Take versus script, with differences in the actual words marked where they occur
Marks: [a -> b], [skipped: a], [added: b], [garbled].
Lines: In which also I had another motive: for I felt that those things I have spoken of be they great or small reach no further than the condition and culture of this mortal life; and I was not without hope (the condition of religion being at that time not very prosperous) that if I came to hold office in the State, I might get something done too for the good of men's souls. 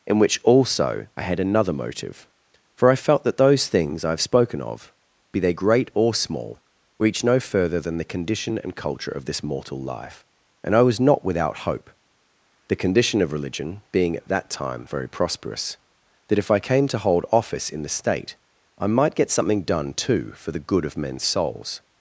In which also I had another motive: for I felt that those things I have spoken of be they great or small reach no further than the condition and culture of this mortal life; and I was not without hope (the condition of religion being at that time [skipped: not] very prosperous) that if I came to hold office in the State, I might get something done too for the good of men's souls.